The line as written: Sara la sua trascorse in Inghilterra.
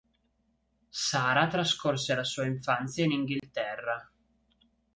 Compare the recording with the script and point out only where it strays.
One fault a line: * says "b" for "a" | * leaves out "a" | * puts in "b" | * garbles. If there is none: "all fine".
* puts in "trascorse"
* says "infanzia" for "trascorse"